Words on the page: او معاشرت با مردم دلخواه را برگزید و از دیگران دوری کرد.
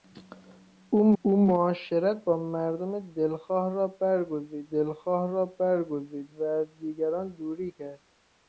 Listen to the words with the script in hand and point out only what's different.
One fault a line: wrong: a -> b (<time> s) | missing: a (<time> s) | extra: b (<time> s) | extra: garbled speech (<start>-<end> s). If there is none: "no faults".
extra: او (1.2 s)
extra: دلخواه را برگزید (4.7 s)